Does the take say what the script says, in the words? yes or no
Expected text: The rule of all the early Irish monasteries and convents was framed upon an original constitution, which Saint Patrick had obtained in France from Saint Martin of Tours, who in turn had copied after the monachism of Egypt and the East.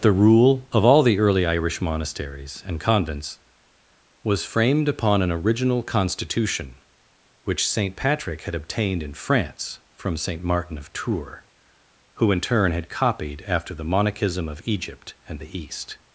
yes